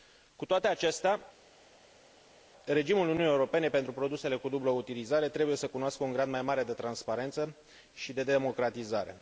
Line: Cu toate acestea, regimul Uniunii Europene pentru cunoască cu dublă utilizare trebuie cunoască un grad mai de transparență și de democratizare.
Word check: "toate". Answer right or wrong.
right